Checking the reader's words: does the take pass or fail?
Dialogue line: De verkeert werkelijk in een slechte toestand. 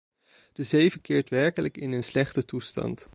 fail